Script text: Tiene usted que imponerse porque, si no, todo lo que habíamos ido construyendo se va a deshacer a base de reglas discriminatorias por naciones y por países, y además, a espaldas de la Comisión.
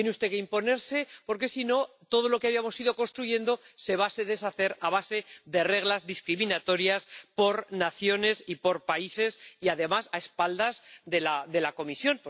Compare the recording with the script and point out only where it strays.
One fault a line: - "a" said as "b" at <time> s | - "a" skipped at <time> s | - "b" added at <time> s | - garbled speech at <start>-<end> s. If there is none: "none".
none